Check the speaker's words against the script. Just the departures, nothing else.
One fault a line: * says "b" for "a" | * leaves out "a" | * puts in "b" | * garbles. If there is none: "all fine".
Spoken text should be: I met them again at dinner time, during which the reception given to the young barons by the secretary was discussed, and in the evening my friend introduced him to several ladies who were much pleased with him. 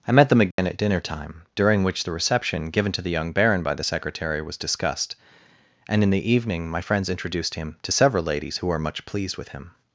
* says "baron" for "barons"
* says "friends" for "friend"